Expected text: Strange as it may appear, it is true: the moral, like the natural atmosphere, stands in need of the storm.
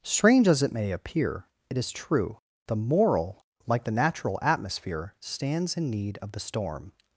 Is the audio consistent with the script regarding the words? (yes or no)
yes